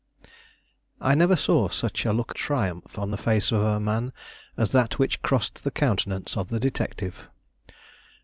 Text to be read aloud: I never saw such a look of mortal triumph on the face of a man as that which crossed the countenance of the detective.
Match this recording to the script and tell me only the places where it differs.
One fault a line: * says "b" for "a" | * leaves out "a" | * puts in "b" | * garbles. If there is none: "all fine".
* leaves out "of mortal"